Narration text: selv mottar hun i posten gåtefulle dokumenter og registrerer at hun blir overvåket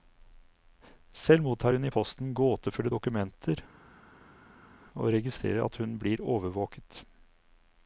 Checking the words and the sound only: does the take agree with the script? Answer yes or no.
yes